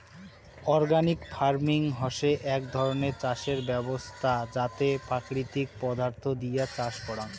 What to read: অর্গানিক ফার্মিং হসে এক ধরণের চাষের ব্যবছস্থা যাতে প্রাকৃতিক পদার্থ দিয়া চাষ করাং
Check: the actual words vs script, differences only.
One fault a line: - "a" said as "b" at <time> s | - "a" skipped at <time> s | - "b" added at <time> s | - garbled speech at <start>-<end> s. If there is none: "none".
none